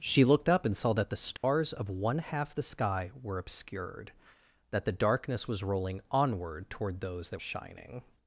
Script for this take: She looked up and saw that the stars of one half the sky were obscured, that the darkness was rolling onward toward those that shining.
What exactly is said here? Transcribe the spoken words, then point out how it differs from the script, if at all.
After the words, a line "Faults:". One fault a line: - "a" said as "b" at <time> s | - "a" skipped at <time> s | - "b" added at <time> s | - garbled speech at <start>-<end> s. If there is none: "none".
She looked up and saw that the stars of one half the sky were obscured, that the darkness was rolling onward toward those that shining.
Faults:
none